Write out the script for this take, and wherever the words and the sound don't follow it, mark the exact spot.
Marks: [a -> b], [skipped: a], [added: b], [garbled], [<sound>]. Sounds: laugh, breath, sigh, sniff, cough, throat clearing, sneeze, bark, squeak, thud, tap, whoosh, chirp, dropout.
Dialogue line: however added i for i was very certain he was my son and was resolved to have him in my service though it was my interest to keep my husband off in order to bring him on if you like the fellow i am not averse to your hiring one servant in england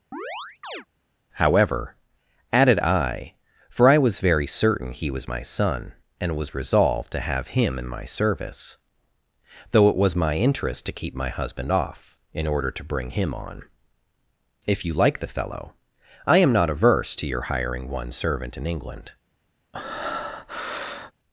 [chirp] however added i for i was very certain he was my son and was resolved to have him in my service though it was my interest to keep my husband off in order to bring him on if you like the fellow i am not averse to your hiring one servant in england [breath]